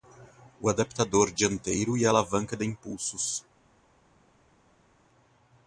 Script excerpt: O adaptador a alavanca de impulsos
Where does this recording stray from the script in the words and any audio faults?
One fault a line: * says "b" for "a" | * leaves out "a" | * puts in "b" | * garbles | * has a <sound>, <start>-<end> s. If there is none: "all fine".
* puts in "dianteiro e"